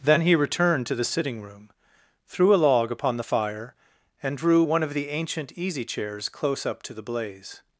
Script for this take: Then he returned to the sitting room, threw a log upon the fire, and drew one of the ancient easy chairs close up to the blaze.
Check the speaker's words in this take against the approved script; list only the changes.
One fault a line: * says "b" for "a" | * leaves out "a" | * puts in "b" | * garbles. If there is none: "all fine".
all fine